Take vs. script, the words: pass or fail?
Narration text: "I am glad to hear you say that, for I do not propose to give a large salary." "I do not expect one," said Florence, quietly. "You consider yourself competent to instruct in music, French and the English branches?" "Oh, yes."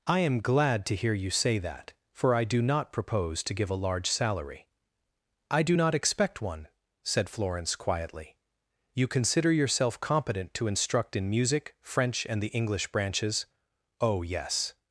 pass